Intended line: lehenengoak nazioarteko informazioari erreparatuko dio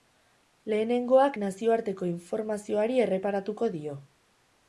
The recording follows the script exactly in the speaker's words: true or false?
true